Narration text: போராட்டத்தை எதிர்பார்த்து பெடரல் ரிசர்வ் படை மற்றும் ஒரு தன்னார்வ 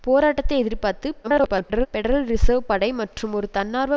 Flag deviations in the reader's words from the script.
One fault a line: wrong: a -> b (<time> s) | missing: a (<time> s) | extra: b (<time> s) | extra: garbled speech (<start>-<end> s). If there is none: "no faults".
extra: garbled speech (1.2-1.9 s)